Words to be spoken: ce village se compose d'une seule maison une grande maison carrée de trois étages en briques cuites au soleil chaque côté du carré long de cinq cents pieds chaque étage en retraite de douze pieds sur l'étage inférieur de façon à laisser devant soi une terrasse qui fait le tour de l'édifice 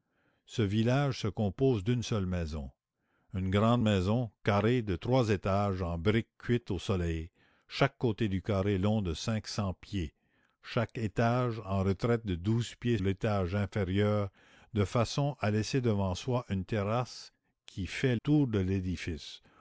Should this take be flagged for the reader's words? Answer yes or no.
yes